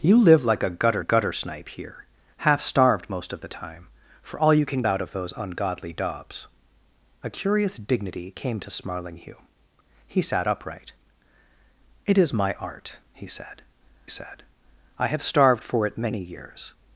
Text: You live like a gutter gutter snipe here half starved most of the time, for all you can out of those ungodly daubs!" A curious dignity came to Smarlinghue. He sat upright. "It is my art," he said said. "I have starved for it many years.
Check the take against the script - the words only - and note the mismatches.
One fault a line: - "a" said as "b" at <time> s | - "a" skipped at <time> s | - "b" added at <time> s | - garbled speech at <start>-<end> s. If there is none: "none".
none